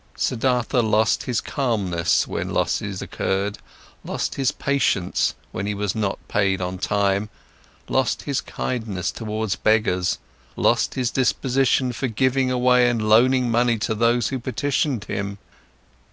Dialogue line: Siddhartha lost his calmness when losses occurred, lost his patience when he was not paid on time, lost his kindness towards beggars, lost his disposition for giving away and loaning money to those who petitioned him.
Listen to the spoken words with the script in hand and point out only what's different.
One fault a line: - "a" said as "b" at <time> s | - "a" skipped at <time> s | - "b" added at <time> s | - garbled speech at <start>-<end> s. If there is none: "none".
none